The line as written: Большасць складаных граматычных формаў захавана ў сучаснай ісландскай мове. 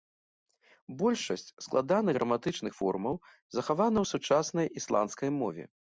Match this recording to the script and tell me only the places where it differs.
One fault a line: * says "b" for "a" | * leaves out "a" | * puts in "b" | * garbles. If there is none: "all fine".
all fine